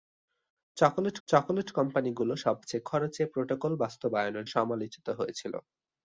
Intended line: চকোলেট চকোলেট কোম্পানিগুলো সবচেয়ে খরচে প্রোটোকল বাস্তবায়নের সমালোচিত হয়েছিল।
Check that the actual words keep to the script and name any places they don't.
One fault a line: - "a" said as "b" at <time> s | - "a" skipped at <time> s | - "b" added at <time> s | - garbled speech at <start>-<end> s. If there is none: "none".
none